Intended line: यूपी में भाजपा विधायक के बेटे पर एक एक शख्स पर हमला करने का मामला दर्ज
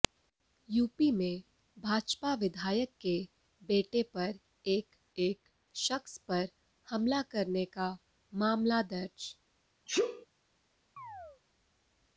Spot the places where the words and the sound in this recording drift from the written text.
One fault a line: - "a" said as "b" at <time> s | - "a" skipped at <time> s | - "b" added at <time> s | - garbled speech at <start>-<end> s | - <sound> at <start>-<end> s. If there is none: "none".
- sneeze at 9.9-10.3 s
- chirp at 11.0-11.4 s